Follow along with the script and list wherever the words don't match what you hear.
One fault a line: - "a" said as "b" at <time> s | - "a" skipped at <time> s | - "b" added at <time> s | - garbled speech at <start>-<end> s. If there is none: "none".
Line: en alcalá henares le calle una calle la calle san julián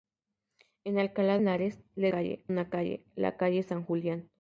none